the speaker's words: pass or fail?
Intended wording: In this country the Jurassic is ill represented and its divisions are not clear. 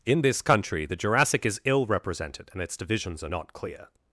pass